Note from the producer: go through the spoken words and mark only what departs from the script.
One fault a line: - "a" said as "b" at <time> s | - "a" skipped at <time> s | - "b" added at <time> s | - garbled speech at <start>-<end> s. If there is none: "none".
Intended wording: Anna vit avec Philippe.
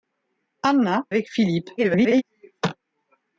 - "vit" skipped at 1.1 s
- garbled speech at 1.8-2.2 s